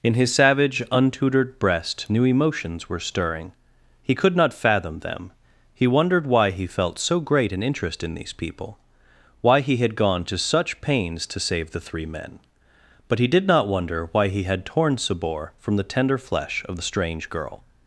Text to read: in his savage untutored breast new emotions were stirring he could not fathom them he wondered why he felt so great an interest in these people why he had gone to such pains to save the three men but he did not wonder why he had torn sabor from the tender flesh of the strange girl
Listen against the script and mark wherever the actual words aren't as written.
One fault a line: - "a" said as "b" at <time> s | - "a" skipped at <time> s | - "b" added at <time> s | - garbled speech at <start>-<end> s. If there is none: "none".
none